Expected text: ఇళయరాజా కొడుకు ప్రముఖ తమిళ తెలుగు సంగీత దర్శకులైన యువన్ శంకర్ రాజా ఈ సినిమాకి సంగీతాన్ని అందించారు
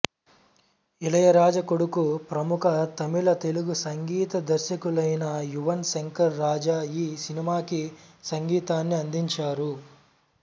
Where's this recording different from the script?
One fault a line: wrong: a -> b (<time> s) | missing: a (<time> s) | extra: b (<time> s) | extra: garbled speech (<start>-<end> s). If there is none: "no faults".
no faults